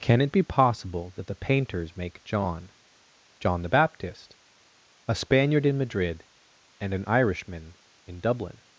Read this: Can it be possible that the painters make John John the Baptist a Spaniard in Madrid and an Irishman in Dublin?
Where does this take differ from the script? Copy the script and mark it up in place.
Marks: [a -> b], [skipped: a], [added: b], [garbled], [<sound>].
Can it be possible that the painters make John John the Baptist a Spaniard in Madrid and an Irishman in Dublin?